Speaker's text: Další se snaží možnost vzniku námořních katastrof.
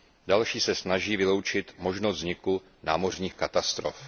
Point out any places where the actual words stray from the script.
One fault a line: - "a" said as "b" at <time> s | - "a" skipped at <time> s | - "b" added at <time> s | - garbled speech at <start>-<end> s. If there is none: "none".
- "vyloučit" added at 1.2 s